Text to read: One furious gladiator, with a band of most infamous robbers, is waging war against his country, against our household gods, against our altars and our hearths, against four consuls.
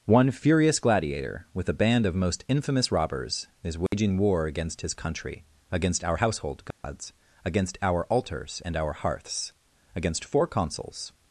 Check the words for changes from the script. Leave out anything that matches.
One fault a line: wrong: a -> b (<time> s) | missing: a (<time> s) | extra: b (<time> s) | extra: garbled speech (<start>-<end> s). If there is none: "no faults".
no faults